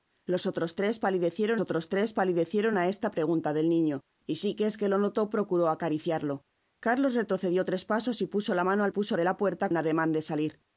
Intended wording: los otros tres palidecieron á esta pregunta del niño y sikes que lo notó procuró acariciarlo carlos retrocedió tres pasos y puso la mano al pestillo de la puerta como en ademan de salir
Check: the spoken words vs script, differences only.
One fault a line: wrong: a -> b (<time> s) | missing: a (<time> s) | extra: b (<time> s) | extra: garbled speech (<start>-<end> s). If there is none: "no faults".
extra: otros tres palidecieron (1.6 s)
wrong: pestillo -> puso (8.9 s)
missing: como (9.7 s)